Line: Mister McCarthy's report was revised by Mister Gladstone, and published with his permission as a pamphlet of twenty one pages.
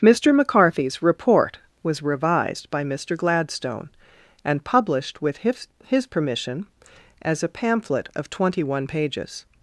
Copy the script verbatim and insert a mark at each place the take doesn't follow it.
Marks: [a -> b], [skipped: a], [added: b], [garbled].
Mister McCarthy's report was revised by Mister Gladstone, and published with his [added: his] permission as a pamphlet of twenty one pages.